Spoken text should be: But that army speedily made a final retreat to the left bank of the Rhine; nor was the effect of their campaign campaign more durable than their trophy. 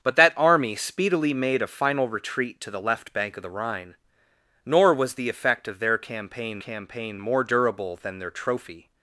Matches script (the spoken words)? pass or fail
pass